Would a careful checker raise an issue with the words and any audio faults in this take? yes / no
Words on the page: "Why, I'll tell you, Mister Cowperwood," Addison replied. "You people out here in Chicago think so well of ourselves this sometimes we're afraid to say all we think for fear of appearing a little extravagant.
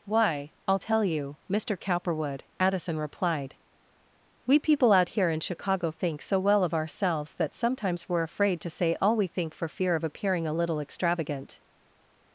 yes